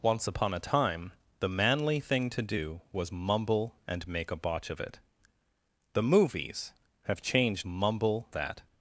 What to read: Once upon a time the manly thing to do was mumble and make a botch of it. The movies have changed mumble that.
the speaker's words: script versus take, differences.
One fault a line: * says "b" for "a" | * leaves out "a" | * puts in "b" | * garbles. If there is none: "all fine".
all fine